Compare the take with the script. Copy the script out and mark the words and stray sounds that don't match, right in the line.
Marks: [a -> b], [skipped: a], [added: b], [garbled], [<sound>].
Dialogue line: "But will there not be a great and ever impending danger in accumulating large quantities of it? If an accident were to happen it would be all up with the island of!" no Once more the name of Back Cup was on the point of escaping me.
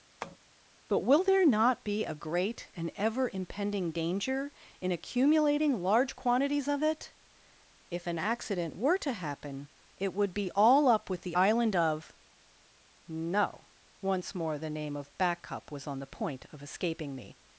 [tap] "But will there not be a great and ever impending danger in accumulating large quantities of it? If an accident were to happen it would be all up with the island of!" no Once more the name of Back Cup was on the point of escaping me.